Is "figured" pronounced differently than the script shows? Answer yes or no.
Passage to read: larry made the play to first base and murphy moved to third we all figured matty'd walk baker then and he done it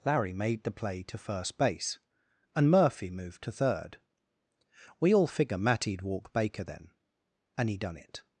yes